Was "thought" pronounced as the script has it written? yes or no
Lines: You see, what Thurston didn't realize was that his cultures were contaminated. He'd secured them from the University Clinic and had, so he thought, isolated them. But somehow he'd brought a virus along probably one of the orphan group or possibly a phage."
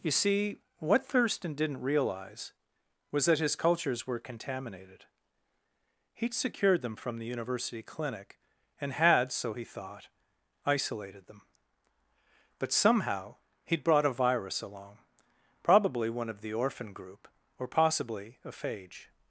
yes